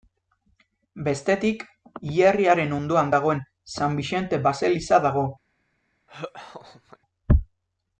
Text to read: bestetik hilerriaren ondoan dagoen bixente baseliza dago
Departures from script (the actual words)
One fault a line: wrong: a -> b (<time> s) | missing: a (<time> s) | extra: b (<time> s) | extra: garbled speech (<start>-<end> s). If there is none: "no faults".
extra: san (3.8 s)